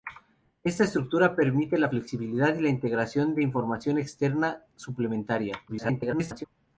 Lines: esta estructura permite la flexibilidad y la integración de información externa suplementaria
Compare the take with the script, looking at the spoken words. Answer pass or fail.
fail